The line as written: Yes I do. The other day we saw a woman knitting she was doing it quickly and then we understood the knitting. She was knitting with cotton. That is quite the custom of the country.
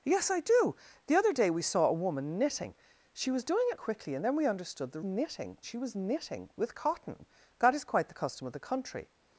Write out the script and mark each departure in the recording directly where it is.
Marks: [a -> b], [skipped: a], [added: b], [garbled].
Yes I do. The other day we saw a woman knitting she was doing it quickly and then we understood the knitting. She was knitting with cotton. That is quite the custom of the country.